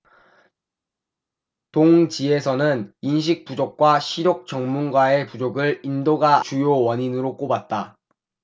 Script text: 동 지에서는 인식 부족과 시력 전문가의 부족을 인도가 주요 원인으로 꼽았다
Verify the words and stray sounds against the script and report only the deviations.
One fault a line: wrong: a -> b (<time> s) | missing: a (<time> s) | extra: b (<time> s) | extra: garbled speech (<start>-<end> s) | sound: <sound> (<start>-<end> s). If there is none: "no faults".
no faults